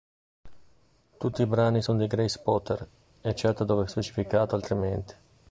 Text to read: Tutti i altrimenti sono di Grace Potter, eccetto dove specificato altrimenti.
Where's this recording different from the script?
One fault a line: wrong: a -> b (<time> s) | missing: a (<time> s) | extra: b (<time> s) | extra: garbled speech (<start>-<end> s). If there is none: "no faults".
wrong: altrimenti -> brani (1.4 s)